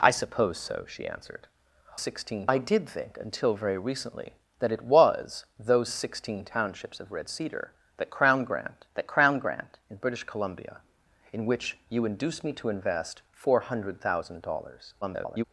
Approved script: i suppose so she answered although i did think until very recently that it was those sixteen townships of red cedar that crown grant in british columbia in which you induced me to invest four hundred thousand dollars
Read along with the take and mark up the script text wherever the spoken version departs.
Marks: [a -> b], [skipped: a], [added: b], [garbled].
i suppose so she answered [although -> sixteen] i did think until very recently that it was those sixteen townships of red cedar that crown grant [added: that crown grant] in british columbia in which you induced me to invest four hundred thousand dollars [garbled]